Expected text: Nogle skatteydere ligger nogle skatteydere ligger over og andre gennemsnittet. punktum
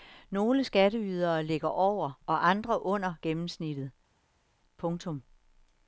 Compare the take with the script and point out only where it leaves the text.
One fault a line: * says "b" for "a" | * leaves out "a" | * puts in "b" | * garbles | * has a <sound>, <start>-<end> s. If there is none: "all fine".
* leaves out "nogle skatteydere ligger"
* puts in "under"